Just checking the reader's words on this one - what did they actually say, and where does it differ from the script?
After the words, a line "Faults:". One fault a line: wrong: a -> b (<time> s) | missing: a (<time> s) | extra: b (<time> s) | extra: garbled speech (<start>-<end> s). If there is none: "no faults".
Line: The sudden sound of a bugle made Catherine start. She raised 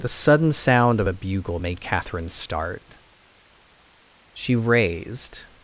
The sudden sound of a bugle made Catherine start. She raised
Faults:
no faults